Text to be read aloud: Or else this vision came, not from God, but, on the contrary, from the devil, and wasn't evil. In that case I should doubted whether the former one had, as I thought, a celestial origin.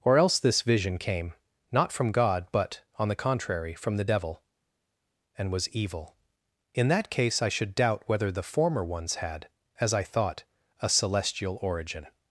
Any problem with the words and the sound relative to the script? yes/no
yes